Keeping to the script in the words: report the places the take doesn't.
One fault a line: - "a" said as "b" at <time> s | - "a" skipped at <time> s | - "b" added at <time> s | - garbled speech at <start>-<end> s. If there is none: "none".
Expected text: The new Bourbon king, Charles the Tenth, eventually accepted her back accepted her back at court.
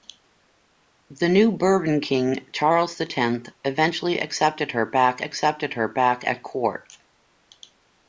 none